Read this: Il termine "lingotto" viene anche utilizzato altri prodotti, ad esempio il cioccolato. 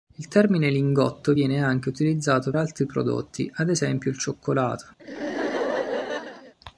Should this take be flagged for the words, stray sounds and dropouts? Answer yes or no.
yes